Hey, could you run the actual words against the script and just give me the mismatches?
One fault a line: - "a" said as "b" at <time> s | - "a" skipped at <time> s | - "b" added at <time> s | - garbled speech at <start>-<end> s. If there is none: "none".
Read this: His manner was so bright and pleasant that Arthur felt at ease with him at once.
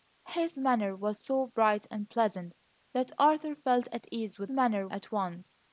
- "him" said as "manner" at 4.5 s